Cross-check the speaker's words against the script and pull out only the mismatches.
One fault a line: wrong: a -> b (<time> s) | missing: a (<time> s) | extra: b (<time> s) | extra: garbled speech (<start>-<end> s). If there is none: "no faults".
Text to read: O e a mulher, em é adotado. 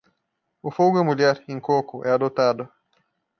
extra: fogo (0.7 s)
extra: coco (1.6 s)